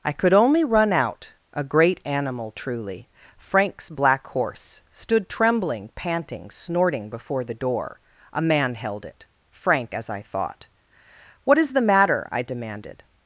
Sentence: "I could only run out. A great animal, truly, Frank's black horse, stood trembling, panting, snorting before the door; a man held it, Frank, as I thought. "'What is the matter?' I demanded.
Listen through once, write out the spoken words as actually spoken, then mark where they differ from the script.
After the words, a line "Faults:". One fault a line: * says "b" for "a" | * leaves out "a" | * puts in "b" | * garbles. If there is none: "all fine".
"I could only run out. A great animal, truly, Frank's black horse, stood trembling, panting, snorting before the door; a man held it, Frank, as I thought. "'What is the matter?' I demanded.
Faults:
all fine